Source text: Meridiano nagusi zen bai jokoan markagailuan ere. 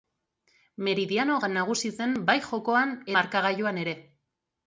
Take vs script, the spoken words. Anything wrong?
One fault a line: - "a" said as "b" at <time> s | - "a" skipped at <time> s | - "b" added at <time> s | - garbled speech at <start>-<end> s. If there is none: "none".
none